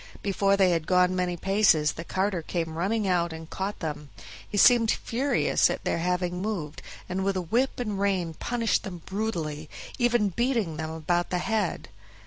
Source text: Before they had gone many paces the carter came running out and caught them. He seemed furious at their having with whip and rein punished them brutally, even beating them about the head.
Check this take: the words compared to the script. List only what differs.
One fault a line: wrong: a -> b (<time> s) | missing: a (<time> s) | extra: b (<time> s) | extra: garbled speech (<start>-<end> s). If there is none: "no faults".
extra: moved and (6.4 s)